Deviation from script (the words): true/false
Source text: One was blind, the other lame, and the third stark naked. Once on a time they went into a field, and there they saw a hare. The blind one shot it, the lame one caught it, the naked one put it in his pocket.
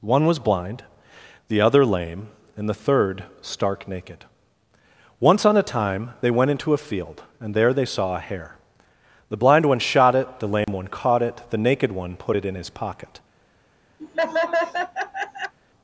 false